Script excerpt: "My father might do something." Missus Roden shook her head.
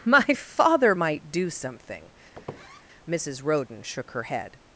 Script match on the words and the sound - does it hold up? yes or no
no